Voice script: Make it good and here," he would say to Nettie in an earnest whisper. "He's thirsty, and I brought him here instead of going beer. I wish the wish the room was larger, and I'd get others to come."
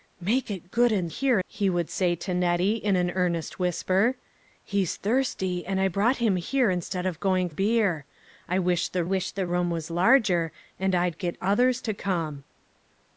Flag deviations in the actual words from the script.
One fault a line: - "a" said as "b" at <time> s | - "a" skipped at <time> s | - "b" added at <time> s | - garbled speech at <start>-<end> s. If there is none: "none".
none